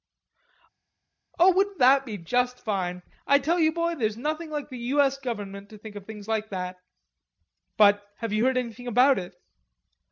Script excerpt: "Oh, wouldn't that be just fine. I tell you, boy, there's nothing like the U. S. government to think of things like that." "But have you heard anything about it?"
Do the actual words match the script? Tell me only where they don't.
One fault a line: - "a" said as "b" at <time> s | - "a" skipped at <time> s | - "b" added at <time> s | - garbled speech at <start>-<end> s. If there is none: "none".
none